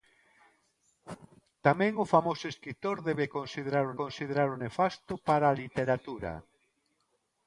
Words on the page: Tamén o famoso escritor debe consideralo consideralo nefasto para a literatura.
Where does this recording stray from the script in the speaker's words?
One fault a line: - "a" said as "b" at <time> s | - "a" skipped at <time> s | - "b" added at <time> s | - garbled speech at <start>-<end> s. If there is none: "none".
none